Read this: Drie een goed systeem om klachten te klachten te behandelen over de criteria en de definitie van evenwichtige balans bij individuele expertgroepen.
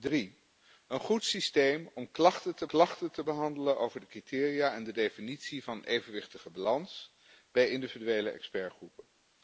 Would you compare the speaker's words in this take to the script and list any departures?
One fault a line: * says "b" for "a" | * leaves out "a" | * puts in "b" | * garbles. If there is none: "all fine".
all fine